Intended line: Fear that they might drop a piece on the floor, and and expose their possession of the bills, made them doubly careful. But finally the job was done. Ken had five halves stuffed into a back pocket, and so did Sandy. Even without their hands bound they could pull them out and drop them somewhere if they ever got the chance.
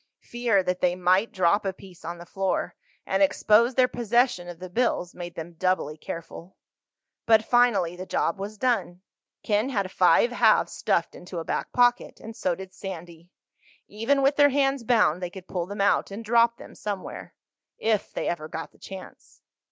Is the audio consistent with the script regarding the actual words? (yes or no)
no